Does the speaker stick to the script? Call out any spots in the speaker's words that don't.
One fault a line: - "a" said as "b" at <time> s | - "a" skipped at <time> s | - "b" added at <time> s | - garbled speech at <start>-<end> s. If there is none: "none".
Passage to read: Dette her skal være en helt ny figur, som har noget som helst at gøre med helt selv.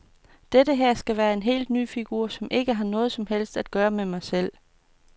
- "ikke" added at 2.5 s
- "helt" said as "mig" at 4.0 s